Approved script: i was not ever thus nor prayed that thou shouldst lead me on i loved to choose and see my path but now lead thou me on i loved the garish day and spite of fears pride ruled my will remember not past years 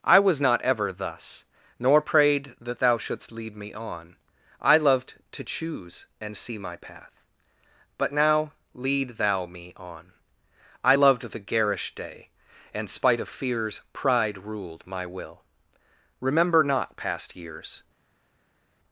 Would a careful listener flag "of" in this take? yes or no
no